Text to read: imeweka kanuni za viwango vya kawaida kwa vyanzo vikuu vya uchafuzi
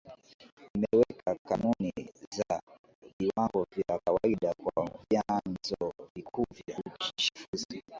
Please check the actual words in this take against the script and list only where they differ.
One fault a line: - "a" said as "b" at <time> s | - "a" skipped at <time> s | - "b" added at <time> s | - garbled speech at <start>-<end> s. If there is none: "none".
none